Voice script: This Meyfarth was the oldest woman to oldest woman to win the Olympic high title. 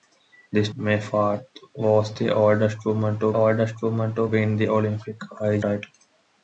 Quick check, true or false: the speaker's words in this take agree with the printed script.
true